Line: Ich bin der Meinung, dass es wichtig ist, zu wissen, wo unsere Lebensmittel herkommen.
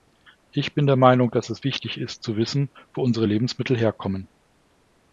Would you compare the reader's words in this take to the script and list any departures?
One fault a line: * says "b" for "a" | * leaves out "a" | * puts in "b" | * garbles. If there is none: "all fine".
all fine